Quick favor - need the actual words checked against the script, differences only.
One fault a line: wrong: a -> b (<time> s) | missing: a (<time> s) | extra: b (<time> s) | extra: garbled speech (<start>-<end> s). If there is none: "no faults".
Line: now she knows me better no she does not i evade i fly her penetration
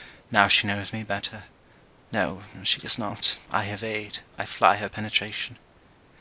no faults